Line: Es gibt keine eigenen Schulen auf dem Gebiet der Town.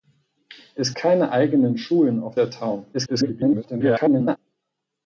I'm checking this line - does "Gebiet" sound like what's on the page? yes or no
no